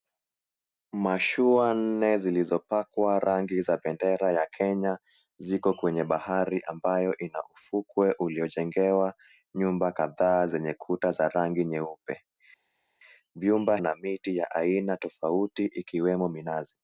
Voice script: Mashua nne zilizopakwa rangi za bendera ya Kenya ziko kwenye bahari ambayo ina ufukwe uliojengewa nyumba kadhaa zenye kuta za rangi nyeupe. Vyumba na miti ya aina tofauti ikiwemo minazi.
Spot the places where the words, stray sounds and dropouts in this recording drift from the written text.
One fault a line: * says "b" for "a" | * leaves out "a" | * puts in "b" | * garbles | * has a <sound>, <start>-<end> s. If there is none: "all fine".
all fine